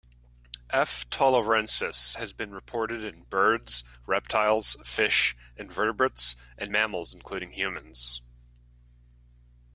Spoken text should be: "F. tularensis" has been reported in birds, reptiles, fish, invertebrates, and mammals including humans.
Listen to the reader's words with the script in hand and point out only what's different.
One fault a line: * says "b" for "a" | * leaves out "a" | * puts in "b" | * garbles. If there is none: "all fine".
all fine